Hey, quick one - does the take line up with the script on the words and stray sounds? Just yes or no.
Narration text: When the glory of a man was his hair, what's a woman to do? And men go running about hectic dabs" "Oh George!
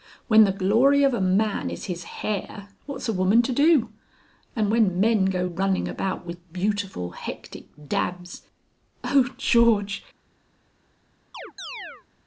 no